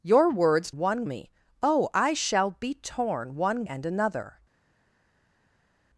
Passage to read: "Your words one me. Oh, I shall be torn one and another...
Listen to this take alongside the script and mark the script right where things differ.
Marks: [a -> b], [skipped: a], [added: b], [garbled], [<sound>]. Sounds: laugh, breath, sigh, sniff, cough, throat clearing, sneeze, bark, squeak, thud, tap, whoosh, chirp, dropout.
"Your words one me. Oh, I shall be torn one and another...